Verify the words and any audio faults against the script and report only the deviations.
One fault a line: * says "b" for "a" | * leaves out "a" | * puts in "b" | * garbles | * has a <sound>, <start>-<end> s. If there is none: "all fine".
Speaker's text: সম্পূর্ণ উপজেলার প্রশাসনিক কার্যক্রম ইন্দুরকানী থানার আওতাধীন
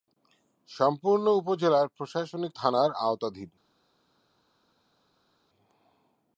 * leaves out "কার্যক্রম ইন্দুরকানী"